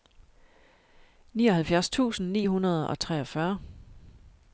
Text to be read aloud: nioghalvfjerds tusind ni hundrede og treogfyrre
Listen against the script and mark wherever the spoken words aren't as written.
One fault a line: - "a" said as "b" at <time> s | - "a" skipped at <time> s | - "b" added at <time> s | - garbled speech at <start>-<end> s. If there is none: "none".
none